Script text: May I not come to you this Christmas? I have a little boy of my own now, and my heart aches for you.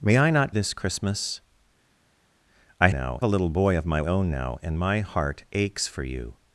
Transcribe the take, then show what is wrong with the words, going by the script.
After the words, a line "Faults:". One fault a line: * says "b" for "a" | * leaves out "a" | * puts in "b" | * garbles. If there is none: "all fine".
May I not this Christmas? I now a little boy of my own now, and my heart aches for you.
Faults:
* leaves out "come to you"
* says "now" for "have"